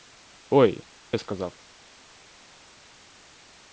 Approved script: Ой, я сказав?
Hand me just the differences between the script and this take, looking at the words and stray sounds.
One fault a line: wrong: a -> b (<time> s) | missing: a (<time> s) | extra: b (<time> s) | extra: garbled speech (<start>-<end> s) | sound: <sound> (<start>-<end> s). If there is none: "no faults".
no faults